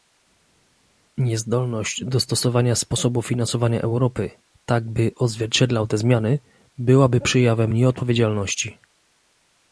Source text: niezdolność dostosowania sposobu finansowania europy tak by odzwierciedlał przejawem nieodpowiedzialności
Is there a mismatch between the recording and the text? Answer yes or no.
yes